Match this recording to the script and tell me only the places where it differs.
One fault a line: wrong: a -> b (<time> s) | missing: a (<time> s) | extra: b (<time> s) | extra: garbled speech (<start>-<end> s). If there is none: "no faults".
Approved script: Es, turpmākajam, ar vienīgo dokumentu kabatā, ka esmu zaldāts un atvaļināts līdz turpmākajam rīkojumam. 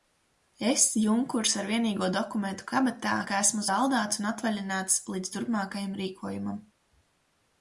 wrong: turpmākajam -> junkurs (1.0 s)